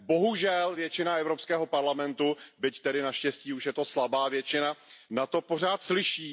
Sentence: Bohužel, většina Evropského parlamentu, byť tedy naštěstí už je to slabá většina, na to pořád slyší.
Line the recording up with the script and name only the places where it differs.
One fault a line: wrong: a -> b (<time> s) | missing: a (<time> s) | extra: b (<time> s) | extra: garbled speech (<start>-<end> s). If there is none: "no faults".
no faults